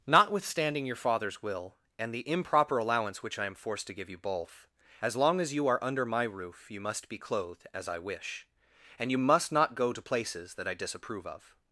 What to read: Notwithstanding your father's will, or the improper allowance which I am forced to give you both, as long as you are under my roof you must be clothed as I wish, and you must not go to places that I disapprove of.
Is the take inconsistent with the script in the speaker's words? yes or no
yes